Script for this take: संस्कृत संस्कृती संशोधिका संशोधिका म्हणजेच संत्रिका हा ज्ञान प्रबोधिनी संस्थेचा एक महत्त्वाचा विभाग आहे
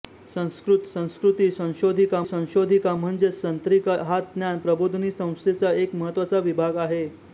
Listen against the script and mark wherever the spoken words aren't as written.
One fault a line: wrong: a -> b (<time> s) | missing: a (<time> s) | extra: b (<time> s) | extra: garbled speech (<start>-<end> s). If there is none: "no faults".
no faults